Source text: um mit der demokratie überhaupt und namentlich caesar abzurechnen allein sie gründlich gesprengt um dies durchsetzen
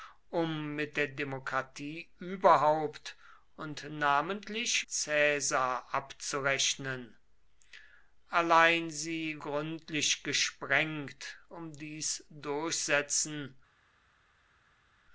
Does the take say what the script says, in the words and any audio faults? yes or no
yes